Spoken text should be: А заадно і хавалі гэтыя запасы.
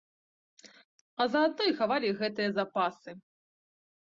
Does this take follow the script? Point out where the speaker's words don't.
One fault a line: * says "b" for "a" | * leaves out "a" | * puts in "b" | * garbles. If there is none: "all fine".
all fine